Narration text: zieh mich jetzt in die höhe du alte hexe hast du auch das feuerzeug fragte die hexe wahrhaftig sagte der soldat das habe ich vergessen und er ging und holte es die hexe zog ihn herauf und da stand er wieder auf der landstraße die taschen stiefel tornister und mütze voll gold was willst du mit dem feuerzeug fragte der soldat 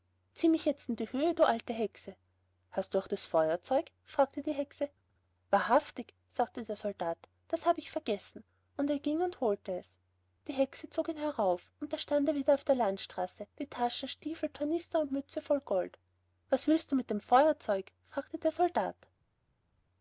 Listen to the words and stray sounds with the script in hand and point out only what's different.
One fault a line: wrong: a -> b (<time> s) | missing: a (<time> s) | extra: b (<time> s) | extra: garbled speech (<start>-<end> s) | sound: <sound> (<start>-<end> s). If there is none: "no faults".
no faults